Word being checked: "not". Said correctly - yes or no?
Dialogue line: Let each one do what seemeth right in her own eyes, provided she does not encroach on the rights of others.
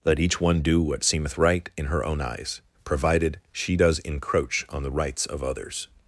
no